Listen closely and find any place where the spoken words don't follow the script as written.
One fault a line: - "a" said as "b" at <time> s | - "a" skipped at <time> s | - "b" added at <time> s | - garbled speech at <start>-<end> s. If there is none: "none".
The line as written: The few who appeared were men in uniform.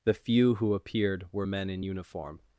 none